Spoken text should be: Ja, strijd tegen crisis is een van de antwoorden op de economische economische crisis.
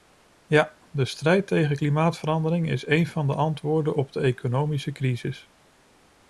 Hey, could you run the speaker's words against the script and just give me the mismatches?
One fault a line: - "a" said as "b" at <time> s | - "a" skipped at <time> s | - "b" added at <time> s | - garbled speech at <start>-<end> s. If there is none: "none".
- "de" added at 0.9 s
- "crisis" said as "klimaatverandering" at 1.7 s
- "economische" skipped at 4.9 s